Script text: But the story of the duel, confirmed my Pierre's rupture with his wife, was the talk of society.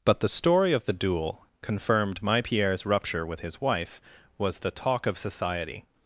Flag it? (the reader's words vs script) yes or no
no